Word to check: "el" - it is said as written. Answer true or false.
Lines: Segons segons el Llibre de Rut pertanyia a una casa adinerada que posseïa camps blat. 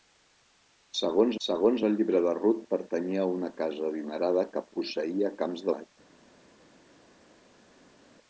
true